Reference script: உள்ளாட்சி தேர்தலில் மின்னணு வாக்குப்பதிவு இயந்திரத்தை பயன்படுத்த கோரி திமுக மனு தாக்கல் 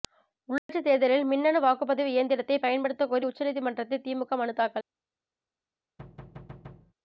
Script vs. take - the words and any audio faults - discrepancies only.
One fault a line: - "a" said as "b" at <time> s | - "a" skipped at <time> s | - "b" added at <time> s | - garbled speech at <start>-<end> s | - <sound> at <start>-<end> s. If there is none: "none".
- dropout at 0.6-0.7 s
- "உச்சநீதிமன்றத்தில்" added at 3.2 s
- thud at 6.0-6.9 s